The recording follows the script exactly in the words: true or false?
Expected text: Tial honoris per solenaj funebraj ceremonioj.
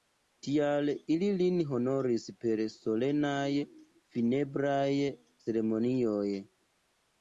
false